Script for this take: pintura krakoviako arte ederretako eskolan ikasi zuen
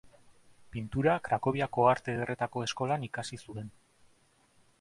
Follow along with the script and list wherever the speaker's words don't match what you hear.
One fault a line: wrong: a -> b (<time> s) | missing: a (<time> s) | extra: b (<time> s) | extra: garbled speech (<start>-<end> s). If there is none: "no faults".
no faults